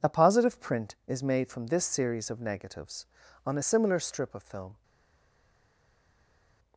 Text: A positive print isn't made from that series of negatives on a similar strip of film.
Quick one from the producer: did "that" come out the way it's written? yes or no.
no